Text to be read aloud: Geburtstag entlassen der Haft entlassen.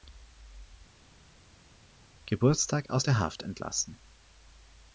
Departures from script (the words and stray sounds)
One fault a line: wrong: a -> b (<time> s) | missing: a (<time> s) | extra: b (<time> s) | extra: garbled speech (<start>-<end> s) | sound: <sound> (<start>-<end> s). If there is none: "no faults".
wrong: entlassen -> aus (2.9 s)